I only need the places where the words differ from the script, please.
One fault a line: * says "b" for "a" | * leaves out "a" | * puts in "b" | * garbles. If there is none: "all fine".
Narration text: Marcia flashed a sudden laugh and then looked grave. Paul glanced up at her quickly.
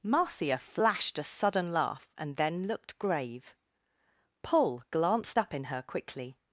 * says "in" for "at"